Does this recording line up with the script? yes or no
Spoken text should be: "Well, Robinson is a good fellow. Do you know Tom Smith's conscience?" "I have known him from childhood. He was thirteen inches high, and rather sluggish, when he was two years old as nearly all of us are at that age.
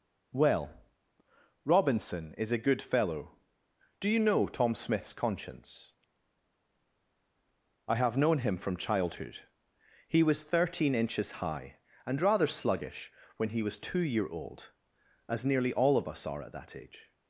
no